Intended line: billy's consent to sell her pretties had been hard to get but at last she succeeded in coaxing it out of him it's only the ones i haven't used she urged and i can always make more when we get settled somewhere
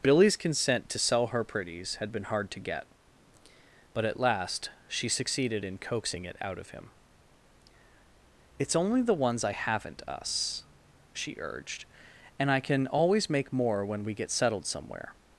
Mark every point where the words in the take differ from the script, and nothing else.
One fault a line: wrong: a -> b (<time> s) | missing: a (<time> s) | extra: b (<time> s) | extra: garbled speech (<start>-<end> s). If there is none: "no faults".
wrong: used -> us (10.1 s)